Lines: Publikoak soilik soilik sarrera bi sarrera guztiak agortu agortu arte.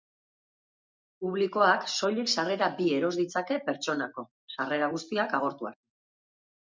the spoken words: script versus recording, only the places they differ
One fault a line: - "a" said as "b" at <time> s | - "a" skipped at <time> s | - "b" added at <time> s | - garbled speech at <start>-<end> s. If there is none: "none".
- "soilik" skipped at 2.3 s
- "eros ditzake pertsonako" added at 3.0 s
- "agortu" skipped at 5.7 s